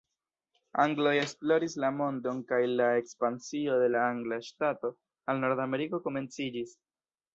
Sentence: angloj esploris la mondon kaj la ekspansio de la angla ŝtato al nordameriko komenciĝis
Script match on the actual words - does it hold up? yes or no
yes